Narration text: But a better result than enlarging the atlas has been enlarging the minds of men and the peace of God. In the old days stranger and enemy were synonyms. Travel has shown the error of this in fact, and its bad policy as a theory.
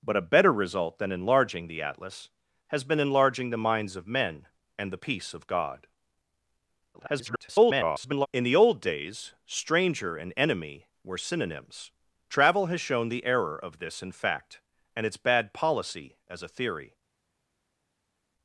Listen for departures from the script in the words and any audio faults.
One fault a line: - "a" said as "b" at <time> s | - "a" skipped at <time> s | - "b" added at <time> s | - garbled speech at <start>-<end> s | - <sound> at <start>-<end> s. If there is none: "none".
- garbled speech at 6.9-8.3 s